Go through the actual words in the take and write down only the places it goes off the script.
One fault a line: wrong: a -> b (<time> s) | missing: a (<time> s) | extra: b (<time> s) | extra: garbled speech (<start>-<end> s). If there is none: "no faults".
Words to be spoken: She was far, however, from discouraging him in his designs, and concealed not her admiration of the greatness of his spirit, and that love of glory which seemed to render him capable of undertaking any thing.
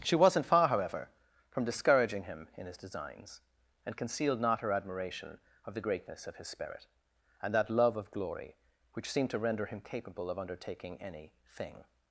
wrong: was -> wasn't (0.1 s)